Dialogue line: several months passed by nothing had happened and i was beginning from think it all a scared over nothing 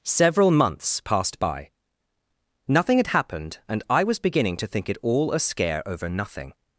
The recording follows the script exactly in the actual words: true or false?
false